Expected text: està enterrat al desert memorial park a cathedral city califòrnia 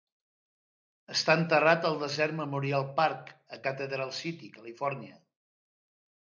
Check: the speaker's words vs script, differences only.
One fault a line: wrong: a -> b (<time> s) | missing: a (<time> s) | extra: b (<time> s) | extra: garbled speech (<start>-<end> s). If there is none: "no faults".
no faults